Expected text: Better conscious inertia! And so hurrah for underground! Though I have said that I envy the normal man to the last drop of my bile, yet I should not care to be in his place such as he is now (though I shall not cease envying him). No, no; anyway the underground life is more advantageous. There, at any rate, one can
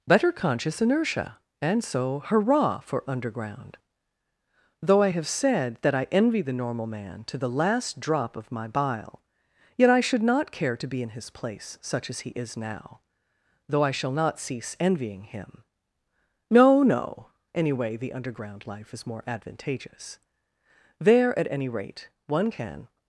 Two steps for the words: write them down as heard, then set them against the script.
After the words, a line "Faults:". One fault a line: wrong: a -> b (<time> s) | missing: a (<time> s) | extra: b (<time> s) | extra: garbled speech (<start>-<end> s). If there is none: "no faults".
Better conscious inertia! And so hurrah for underground! Though I have said that I envy the normal man to the last drop of my bile, yet I should not care to be in his place such as he is now (though I shall not cease envying him). No, no; anyway the underground life is more advantageous. There, at any rate, one can
Faults:
no faults